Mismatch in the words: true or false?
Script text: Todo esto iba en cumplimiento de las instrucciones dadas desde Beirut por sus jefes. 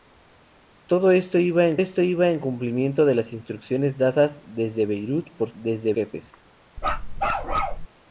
true